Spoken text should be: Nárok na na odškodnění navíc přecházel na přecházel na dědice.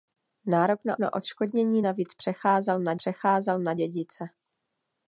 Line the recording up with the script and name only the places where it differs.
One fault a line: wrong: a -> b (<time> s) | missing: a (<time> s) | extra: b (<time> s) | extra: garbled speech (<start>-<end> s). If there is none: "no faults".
no faults